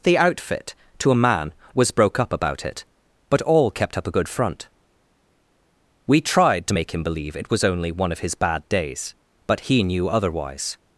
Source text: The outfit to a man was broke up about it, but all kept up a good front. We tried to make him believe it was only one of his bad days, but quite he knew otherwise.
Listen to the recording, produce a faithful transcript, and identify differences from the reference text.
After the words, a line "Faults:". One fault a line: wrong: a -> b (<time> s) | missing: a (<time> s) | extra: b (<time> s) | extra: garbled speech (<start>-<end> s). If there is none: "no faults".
The outfit to a man was broke up about it, but all kept up a good front. We tried to make him believe it was only one of his bad days, but he knew otherwise.
Faults:
missing: quite (9.6 s)